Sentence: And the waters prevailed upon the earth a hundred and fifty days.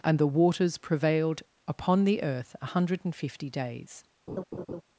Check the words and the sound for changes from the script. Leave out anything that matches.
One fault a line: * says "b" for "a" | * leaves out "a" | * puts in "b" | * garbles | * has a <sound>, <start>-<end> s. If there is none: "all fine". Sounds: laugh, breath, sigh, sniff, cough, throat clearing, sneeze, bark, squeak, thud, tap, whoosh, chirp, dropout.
* has a laugh, 4.3-4.8 s